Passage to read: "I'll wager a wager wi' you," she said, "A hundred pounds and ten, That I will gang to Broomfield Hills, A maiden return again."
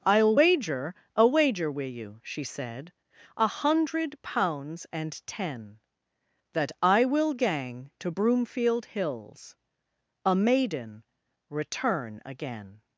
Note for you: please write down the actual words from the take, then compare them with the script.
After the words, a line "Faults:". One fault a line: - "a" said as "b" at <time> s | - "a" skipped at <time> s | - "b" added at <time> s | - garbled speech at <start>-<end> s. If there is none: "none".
"I'll wager a wager wi' you," she said, "A hundred pounds and ten, That I will gang to Broomfield Hills, A maiden return again."
Faults:
none